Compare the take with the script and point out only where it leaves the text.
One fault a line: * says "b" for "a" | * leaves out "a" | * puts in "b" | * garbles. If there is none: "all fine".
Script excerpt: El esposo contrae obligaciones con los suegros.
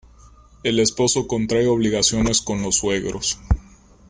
all fine